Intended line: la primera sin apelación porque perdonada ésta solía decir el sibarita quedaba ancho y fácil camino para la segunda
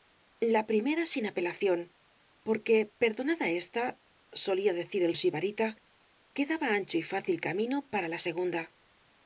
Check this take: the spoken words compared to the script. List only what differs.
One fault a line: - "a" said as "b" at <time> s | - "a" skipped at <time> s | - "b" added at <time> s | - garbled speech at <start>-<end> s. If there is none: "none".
none